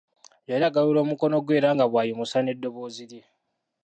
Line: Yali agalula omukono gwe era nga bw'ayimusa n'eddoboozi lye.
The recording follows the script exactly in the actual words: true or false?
true